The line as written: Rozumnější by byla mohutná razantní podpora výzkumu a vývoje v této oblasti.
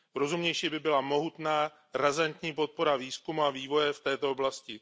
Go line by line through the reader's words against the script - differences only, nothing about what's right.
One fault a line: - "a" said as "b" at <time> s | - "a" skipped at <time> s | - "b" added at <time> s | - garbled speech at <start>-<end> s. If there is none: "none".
none